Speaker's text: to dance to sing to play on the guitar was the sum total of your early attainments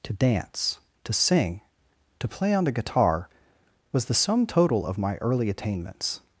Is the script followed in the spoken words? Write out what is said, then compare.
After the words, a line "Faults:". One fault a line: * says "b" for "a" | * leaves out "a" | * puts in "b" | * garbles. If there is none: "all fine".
to dance to sing to play on the guitar was the sum total of my early attainments
Faults:
* says "my" for "your"